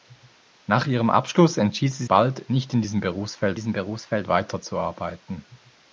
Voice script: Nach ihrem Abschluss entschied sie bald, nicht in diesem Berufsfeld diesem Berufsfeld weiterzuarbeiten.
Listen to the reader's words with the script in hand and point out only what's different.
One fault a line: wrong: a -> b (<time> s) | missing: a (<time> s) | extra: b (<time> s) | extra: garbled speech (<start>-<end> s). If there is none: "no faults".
no faults